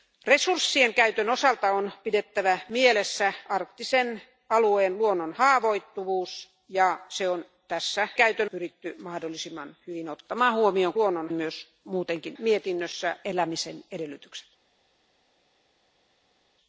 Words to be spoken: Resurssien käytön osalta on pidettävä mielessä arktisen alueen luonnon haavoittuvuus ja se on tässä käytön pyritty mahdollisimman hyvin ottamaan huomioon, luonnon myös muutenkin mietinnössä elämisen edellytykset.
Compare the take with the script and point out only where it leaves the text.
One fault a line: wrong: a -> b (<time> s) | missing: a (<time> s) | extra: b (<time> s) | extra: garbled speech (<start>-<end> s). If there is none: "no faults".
no faults